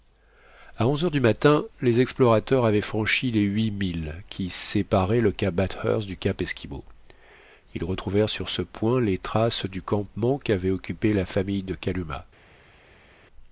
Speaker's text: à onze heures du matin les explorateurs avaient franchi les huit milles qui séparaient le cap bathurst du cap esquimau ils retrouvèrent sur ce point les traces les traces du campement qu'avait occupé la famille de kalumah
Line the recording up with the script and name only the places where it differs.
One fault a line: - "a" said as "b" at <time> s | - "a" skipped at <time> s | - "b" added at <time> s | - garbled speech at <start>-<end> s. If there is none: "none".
- "les traces" skipped at 9.7 s